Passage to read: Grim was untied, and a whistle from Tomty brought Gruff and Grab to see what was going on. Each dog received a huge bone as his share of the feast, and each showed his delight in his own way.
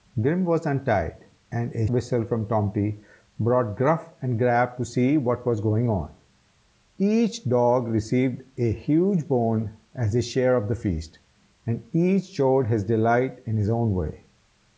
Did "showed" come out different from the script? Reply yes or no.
no